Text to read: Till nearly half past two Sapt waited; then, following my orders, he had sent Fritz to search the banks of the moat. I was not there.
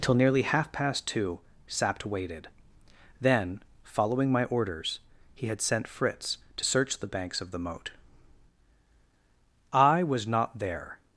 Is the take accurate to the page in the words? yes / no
yes